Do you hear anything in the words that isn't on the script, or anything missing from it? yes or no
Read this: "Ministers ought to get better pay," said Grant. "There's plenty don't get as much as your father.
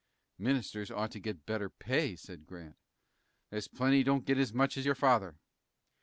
no